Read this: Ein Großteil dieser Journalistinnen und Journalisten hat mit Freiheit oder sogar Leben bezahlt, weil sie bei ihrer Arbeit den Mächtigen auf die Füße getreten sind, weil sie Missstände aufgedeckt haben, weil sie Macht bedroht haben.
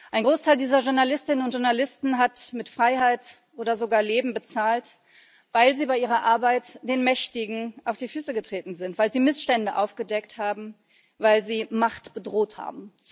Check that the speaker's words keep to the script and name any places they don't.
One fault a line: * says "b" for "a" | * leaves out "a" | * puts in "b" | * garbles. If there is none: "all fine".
all fine